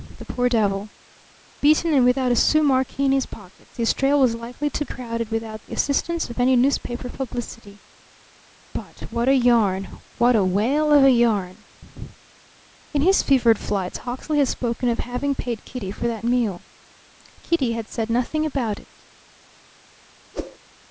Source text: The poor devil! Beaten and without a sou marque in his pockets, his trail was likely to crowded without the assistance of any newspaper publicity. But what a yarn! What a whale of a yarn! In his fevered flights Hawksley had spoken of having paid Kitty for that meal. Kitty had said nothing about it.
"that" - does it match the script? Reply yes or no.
yes